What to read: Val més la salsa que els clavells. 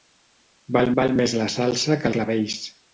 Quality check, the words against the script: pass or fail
fail